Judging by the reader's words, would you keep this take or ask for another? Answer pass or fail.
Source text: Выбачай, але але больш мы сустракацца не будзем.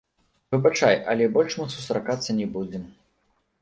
fail